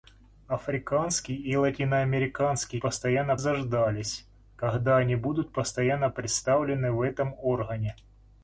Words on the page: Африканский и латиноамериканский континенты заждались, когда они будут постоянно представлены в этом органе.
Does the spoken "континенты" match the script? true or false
false